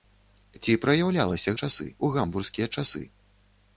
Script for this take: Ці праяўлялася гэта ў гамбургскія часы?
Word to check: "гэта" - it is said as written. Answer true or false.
false